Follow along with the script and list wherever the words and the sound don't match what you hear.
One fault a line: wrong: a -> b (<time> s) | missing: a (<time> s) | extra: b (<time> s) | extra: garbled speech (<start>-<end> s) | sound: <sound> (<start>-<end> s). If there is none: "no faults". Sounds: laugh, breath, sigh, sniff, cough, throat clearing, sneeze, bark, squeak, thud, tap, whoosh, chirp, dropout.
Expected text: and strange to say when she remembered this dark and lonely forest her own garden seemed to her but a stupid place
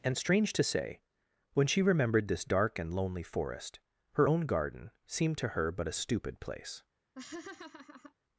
sound: laugh (7.2-8.1 s)